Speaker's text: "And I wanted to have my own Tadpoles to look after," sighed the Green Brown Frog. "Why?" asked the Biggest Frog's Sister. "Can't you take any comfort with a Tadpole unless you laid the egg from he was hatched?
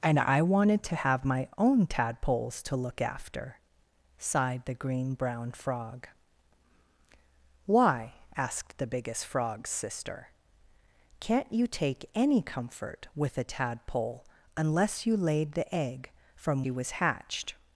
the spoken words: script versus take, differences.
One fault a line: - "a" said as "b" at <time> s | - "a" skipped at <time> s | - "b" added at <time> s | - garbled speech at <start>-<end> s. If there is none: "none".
none